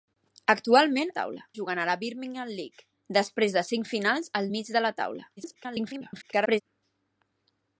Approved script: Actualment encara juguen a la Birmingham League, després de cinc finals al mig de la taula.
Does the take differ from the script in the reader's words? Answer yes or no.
yes